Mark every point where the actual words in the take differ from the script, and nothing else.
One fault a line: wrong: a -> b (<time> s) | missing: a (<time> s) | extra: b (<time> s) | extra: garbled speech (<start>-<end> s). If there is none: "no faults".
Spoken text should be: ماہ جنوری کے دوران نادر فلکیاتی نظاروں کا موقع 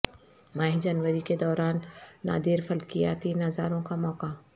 no faults